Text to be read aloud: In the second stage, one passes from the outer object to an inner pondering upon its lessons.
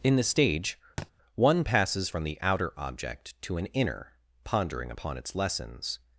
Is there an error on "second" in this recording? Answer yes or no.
yes